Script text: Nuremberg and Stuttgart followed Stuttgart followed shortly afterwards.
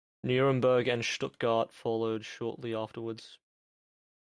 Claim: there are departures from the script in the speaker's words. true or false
true